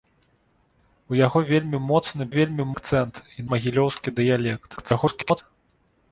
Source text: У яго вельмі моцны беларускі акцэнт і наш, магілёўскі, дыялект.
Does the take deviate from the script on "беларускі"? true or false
true